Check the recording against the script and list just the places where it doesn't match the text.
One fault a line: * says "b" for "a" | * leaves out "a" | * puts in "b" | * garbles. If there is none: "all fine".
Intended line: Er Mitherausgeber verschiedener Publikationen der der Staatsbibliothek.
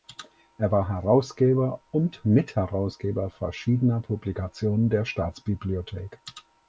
* puts in "war Herausgeber und"
* leaves out "der"